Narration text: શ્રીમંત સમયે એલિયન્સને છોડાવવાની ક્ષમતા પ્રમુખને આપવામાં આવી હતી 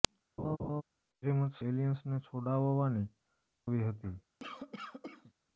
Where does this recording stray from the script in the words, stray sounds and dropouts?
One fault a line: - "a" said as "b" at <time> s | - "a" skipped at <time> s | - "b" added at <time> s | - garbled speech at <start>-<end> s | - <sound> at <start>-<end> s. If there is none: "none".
- laugh at 0.4-0.8 s
- "સમયે" skipped at 1.6 s
- "ક્ષમતા પ્રમુખને આપવામાં" skipped at 3.1 s
- cough at 4.4-5.3 s